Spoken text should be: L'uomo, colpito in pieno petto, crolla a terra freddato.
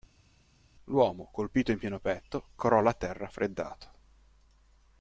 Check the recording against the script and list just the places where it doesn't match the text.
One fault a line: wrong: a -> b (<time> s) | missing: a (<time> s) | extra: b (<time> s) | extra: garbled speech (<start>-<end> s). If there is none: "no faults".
no faults